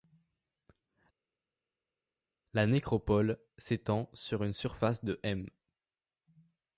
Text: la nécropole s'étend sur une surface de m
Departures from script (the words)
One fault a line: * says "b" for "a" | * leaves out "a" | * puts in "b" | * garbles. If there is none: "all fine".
all fine